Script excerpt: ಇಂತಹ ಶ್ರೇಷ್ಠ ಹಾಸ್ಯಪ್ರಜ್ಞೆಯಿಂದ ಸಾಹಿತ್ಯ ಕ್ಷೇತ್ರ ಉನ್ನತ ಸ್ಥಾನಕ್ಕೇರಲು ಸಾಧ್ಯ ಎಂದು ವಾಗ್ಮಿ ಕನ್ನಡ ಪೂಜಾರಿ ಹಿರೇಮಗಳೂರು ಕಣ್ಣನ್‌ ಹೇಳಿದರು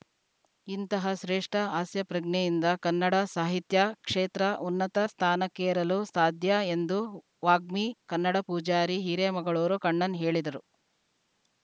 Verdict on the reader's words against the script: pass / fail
fail